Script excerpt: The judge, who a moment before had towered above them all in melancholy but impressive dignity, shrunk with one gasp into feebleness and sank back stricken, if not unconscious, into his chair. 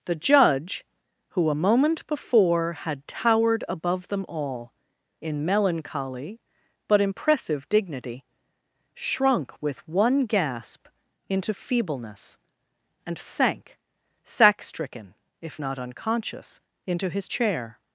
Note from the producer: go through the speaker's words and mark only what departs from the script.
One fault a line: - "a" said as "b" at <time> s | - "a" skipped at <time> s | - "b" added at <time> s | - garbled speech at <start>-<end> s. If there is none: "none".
- "back" said as "sack" at 14.2 s